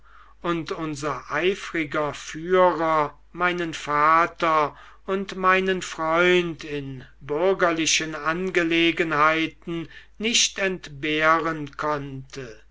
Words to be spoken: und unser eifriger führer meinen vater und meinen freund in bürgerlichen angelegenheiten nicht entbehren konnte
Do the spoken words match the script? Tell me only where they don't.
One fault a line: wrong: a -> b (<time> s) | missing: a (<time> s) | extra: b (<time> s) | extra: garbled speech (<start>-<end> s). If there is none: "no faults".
no faults